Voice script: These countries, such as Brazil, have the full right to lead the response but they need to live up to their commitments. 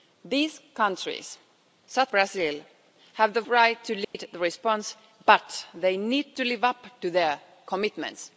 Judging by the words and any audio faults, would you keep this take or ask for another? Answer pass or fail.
fail